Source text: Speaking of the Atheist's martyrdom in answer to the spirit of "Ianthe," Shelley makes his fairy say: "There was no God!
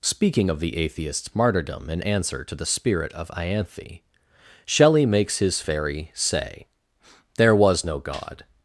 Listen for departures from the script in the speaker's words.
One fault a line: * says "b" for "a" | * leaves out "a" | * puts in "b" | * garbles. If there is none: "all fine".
all fine